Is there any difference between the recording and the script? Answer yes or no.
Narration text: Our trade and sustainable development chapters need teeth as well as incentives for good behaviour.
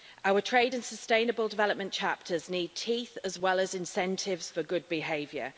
no